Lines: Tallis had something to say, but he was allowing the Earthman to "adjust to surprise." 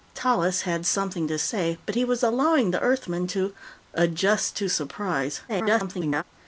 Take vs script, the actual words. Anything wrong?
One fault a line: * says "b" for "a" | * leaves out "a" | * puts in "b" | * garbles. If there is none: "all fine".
* garbles